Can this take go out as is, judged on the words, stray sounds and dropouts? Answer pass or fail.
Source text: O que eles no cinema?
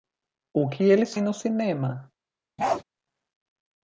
fail